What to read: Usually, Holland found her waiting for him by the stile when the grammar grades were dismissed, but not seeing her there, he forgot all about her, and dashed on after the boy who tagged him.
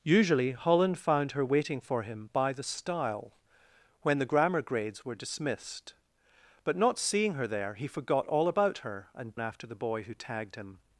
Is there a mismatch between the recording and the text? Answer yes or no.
yes